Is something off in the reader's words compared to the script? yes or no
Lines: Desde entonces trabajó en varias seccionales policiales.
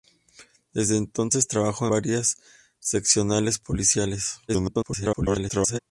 yes